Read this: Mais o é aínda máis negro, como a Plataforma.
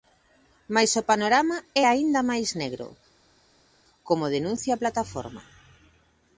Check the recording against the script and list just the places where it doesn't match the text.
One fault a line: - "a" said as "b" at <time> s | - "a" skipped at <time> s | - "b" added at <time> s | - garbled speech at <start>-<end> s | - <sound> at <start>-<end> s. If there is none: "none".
- "panorama" added at 1.1 s
- "denuncia" added at 4.4 s